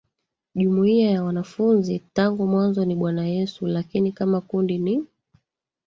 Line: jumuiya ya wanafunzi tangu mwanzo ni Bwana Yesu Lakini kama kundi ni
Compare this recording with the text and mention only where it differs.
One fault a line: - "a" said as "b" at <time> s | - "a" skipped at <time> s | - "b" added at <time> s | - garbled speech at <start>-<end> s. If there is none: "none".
none